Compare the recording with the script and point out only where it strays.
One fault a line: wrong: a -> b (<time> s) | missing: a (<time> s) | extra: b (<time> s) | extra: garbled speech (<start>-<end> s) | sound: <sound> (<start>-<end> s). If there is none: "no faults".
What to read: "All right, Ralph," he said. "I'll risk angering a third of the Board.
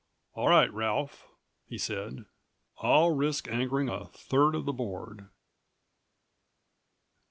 no faults